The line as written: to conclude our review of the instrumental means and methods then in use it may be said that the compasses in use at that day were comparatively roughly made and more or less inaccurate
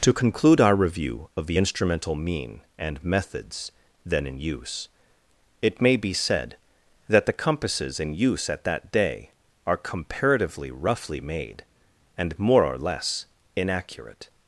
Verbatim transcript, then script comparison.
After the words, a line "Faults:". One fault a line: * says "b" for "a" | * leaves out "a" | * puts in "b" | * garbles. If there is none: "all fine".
to conclude our review of the instrumental mean and methods then in use it may be said that the compasses in use at that day are comparatively roughly made and more or less inaccurate
Faults:
* says "mean" for "means"
* says "are" for "were"